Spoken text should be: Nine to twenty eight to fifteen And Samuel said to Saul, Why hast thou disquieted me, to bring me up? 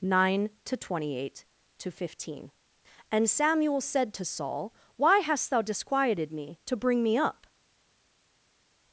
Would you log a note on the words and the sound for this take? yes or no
no